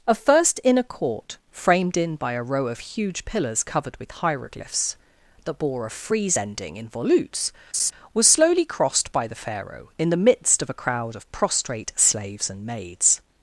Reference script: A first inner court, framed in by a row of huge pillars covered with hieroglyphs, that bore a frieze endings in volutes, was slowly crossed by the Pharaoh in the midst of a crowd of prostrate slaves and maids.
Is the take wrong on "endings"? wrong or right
wrong